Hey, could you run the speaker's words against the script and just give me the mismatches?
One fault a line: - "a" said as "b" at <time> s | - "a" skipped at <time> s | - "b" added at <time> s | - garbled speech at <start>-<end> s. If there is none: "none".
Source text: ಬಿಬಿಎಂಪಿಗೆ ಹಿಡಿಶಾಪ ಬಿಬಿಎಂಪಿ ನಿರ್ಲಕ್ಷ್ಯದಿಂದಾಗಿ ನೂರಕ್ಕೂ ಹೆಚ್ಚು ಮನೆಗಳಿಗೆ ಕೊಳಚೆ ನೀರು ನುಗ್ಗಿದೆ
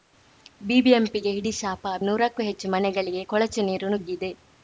- "ಬಿಬಿಎಂಪಿ ನಿರ್ಲಕ್ಷ್ಯದಿಂದಾಗಿ" skipped at 1.9 s